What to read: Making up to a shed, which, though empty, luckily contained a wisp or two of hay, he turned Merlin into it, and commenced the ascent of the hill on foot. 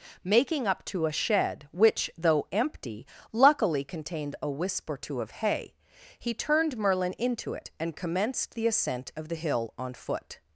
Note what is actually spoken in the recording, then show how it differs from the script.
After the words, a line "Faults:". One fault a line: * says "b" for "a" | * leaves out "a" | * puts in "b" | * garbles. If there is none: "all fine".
Making up to a shed, which, though empty, luckily contained a wisp or two of hay, he turned Merlin into it, and commenced the ascent of the hill on foot.
Faults:
all fine